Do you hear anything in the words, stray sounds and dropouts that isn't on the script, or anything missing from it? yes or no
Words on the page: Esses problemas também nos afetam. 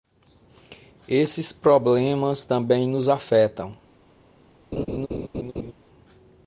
yes